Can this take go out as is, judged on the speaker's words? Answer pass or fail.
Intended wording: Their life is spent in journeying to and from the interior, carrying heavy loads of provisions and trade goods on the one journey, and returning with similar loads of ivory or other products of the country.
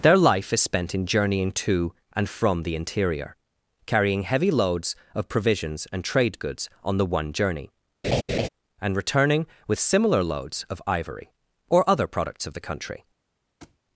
pass